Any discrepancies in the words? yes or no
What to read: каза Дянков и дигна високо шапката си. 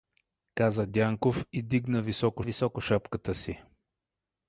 yes